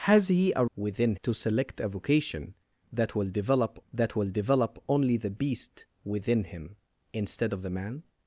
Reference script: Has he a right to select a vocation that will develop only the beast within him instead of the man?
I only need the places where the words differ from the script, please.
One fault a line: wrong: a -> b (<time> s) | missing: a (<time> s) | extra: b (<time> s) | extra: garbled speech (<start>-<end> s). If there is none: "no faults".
wrong: right -> within (0.7 s)
extra: that will develop (3.9 s)